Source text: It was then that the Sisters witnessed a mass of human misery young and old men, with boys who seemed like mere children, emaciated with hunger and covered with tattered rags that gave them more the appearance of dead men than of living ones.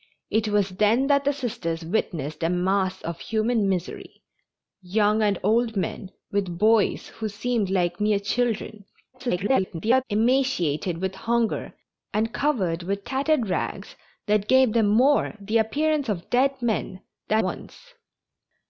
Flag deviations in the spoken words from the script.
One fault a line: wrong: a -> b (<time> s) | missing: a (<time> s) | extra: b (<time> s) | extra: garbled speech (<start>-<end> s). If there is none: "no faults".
extra: garbled speech (9.1-10.0 s)
missing: of living (17.4 s)